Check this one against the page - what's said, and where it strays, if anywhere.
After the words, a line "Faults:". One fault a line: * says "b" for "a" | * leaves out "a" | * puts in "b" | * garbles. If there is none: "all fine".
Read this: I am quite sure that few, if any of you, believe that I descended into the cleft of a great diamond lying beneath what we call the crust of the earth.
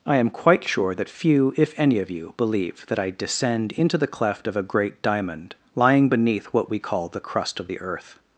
I am quite sure that few, if any of you, believe that I descend into the cleft of a great diamond lying beneath what we call the crust of the earth.
Faults:
* says "descend" for "descended"